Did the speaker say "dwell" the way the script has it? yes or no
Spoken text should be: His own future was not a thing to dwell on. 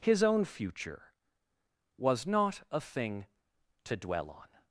yes